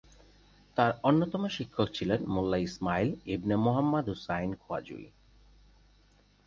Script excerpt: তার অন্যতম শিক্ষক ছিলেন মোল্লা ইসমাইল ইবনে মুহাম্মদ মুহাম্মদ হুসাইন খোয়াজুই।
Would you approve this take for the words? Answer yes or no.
no